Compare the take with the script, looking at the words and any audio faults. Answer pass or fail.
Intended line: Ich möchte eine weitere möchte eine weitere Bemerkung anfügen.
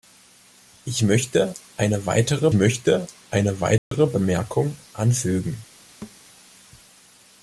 fail